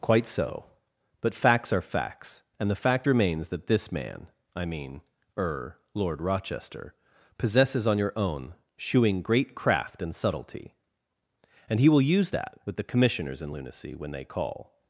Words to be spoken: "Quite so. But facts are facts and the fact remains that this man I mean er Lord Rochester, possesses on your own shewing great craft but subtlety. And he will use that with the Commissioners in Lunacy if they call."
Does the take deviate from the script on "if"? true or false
true